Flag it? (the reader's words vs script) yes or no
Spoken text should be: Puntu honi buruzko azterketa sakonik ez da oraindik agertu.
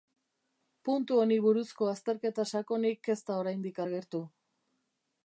no